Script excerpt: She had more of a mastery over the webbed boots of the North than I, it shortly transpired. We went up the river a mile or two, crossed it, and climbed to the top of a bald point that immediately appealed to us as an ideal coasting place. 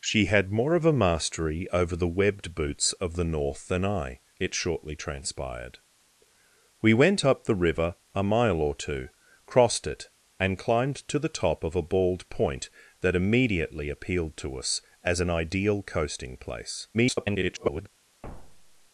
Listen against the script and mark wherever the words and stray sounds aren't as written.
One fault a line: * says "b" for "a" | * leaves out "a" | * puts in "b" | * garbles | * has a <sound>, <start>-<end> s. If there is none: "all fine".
* garbles
* has a thud, 18.2-18.9 s